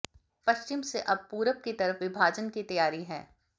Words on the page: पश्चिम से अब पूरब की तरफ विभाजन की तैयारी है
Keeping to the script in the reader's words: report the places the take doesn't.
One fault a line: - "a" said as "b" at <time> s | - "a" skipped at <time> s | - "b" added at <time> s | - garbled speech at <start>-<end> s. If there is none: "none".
none